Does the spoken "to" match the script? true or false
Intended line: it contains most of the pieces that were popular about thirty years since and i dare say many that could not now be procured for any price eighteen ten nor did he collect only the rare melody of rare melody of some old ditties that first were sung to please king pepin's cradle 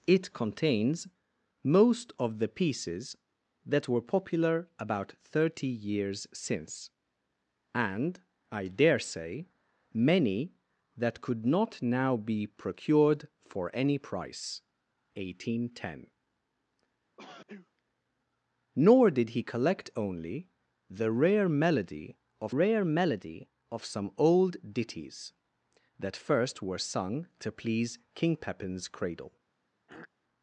true